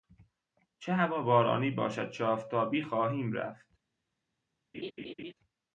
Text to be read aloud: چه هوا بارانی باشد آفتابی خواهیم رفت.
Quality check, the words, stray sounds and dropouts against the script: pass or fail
fail